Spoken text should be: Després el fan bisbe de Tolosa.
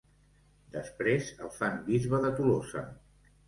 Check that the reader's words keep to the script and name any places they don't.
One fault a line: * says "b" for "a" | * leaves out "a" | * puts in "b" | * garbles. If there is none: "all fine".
all fine